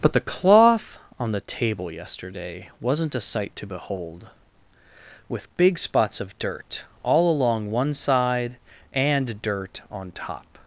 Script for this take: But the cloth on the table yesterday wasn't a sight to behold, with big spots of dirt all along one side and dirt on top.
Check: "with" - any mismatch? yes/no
no